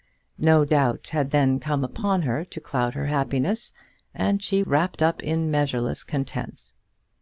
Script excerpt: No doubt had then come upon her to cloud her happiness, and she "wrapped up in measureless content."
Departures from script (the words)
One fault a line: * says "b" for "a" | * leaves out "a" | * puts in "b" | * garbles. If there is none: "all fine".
all fine